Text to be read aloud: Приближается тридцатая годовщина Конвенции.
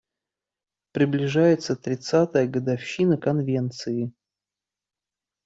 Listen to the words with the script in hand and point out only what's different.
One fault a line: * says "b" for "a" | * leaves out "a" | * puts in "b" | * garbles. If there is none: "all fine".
all fine